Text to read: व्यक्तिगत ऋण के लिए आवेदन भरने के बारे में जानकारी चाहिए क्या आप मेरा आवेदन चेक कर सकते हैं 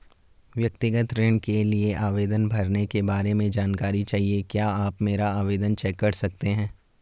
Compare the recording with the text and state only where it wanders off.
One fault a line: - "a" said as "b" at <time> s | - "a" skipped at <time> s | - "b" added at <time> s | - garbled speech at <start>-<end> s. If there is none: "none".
none